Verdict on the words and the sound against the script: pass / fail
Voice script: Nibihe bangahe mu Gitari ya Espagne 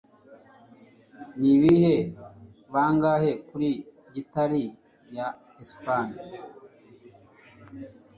fail